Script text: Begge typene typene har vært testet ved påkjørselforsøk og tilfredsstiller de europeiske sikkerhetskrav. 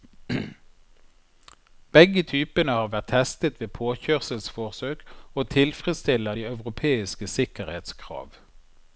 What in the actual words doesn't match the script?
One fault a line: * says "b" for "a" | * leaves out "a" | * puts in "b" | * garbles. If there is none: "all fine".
* leaves out "typene"